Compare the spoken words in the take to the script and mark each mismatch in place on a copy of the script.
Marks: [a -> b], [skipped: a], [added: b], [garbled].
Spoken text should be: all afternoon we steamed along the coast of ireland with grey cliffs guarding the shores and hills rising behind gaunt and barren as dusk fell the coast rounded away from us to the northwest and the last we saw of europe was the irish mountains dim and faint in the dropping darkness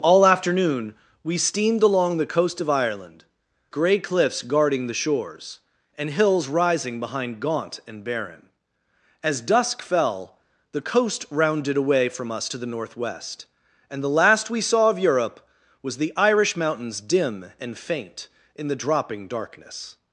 all afternoon we steamed along the coast of ireland [skipped: with] grey cliffs guarding the shores and hills rising behind gaunt and barren as dusk fell the coast rounded away from us to the northwest and the last we saw of europe was the irish mountains dim and faint in the dropping darkness